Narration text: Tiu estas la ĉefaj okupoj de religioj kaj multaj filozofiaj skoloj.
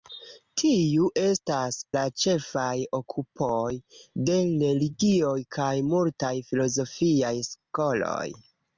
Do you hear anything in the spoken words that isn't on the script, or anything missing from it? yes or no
no